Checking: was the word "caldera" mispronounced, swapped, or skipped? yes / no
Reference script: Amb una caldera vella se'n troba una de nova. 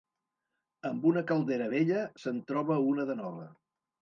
no